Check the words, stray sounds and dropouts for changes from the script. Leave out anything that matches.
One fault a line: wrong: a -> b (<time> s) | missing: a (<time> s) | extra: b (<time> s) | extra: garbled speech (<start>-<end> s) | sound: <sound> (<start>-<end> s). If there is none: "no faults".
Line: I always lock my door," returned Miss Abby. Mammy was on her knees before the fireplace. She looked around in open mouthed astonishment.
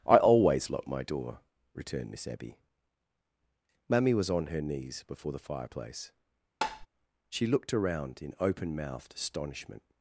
sound: tap (6.6-6.9 s)